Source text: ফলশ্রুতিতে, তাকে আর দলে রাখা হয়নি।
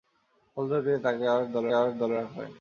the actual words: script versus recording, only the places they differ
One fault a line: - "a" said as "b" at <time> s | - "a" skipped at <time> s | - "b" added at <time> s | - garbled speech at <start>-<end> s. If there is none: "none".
- "আর দলে" added at 1.7 s